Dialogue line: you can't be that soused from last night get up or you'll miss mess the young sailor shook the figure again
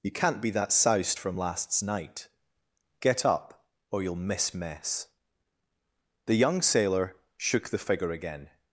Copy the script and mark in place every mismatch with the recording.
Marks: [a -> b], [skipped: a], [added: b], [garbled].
you can't be that soused from [last -> lasts] night get up or you'll miss mess the young sailor shook the figure again